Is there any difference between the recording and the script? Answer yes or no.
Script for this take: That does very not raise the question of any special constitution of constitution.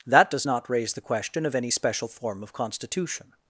yes